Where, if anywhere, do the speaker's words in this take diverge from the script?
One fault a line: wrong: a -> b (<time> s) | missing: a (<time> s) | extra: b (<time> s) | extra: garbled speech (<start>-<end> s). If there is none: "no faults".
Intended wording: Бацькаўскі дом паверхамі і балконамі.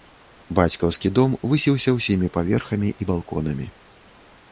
extra: высіўся ўсімі (1.5 s)